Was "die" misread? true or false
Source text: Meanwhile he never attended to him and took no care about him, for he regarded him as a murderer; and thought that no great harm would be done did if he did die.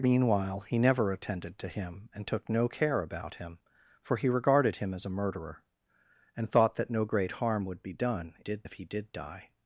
false